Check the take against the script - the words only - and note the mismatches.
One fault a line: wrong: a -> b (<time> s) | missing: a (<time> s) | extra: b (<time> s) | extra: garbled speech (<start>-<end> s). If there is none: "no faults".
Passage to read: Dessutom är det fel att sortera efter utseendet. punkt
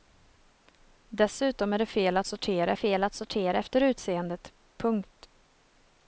extra: fel att sortera (2.7 s)